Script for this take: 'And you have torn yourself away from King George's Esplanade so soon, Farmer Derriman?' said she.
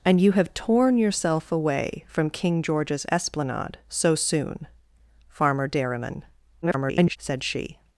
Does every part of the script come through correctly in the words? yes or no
no